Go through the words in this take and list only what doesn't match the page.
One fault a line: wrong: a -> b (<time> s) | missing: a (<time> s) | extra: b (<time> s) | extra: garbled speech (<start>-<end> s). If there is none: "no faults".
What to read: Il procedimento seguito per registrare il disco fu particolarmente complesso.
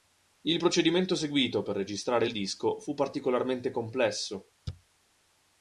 no faults